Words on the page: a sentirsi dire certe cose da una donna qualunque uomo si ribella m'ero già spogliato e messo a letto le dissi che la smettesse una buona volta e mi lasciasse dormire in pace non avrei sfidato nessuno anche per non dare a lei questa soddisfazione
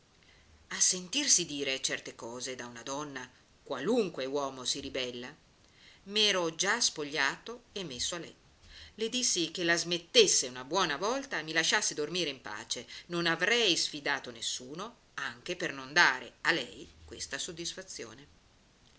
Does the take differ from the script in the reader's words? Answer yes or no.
no